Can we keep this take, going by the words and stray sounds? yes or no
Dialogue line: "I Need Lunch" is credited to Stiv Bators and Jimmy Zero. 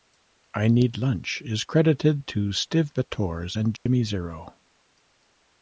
no